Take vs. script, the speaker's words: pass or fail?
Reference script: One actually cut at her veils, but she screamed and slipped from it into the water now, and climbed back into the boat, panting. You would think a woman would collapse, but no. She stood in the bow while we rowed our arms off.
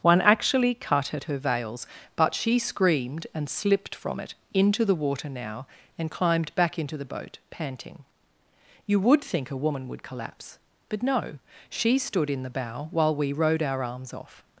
pass